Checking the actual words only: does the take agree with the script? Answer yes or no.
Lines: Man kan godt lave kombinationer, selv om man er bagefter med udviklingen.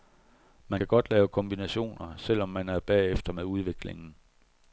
yes